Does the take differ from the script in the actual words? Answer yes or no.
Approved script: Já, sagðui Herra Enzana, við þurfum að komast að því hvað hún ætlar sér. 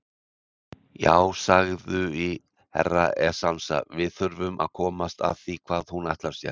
no